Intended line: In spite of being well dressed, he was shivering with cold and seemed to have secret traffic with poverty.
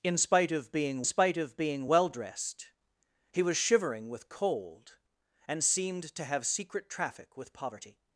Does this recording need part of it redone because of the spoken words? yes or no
yes